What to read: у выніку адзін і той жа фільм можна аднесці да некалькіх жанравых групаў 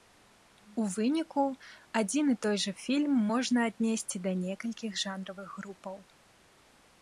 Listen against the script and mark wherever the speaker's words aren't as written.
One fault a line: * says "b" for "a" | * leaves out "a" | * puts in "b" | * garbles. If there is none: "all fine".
all fine